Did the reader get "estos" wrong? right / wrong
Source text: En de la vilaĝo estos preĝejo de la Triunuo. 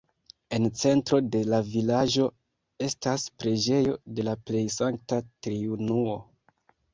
wrong